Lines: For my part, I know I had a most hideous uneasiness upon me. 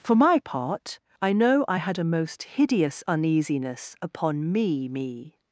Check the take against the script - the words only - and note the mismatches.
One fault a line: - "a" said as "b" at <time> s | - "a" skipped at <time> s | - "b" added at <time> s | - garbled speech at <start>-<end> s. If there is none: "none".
- "me" added at 4.9 s